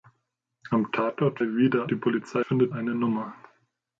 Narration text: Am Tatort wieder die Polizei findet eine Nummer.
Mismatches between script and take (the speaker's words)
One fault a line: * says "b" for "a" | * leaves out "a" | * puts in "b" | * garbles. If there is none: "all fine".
all fine